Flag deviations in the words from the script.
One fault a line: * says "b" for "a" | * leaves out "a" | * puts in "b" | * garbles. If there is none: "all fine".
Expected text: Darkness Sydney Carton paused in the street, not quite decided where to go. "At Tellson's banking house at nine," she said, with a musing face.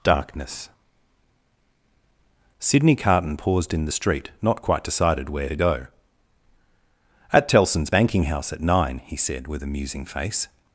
* says "he" for "she"